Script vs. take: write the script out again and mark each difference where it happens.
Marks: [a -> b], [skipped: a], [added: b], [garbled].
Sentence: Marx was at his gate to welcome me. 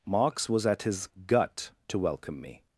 Marx was at his [gate -> gut] to welcome me.